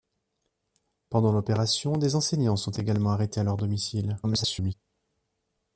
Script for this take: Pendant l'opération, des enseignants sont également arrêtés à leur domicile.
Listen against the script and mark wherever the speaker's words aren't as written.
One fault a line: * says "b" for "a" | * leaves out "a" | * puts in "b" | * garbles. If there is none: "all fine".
* garbles